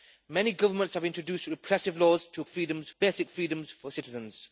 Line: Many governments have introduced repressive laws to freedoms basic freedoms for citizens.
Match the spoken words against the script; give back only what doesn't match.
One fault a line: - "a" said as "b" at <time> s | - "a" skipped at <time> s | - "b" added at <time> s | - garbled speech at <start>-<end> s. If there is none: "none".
none